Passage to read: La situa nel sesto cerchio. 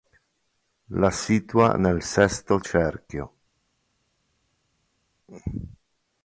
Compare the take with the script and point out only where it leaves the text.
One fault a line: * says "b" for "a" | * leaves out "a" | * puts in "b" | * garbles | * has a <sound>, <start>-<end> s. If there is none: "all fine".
all fine